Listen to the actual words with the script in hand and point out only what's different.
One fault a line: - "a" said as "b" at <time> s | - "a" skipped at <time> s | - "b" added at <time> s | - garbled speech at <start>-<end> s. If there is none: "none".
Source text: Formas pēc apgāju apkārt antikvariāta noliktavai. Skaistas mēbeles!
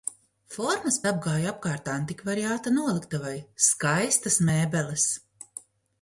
- "pēc" skipped at 0.9 s